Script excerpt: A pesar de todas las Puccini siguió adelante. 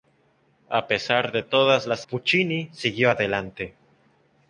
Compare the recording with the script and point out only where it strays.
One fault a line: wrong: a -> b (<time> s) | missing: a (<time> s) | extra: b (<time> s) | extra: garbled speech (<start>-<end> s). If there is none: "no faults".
no faults